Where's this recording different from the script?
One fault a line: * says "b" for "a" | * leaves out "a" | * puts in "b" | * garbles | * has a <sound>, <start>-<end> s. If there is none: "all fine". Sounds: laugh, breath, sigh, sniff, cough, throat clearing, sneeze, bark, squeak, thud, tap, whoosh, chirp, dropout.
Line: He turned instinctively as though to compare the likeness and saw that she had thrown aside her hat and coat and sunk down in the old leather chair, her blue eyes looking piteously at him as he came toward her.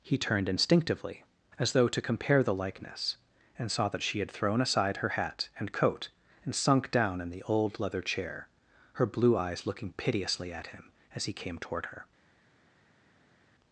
all fine